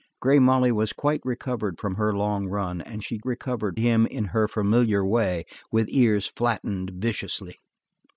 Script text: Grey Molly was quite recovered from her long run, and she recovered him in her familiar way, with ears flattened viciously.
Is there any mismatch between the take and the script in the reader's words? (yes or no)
no